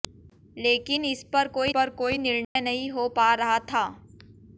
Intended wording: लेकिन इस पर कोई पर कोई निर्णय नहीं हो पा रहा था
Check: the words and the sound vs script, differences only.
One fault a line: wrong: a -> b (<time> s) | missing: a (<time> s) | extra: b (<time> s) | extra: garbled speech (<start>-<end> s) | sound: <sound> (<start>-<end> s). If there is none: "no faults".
sound: dropout (2.4-2.6 s)